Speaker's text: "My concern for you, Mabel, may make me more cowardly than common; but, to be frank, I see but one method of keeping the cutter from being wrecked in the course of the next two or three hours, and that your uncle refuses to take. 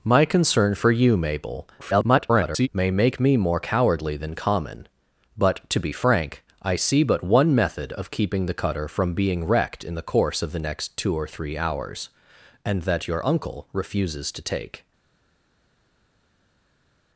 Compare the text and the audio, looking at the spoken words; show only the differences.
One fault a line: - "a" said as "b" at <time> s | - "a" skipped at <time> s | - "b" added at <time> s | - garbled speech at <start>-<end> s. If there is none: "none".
- garbled speech at 1.8-2.7 s